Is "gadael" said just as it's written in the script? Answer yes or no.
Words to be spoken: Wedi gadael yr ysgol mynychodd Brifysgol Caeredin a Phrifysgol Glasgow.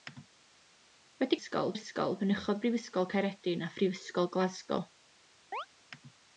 no